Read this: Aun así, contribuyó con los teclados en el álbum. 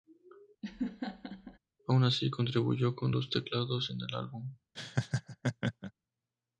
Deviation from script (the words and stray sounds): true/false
true